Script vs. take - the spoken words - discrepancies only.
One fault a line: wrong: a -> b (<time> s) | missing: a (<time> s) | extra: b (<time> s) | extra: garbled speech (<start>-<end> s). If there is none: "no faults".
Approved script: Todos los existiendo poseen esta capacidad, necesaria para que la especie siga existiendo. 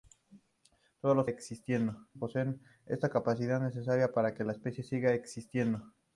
no faults